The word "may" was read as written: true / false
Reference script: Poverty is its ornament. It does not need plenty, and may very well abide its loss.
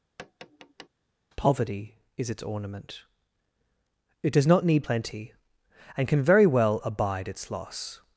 false